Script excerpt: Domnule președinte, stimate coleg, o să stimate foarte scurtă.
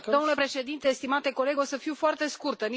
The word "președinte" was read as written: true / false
true